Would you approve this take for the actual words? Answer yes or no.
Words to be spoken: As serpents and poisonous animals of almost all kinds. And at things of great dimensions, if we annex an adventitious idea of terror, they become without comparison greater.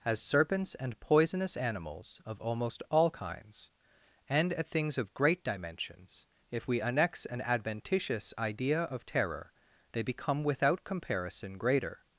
yes